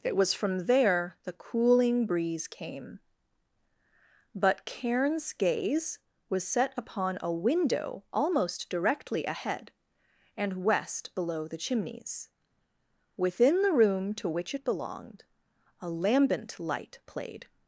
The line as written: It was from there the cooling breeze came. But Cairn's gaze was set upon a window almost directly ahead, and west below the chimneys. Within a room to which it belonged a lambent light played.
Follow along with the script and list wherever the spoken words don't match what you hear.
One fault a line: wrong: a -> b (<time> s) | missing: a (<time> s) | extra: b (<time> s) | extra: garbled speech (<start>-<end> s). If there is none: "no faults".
wrong: a -> the (13.6 s)